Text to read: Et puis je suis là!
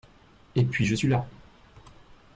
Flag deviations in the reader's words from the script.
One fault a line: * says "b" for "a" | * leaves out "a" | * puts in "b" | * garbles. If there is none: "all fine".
all fine